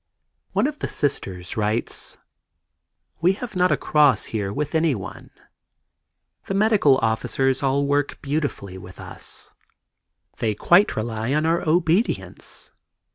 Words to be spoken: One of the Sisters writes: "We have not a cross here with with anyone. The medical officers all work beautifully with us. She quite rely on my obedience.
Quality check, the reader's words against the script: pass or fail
fail